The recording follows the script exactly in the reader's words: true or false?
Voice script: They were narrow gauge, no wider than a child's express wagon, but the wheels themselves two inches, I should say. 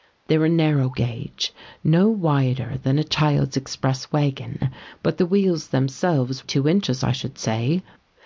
true